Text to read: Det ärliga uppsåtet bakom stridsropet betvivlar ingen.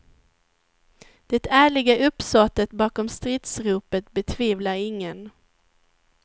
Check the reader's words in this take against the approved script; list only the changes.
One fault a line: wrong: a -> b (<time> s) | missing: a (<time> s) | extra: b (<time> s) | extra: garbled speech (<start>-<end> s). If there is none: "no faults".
no faults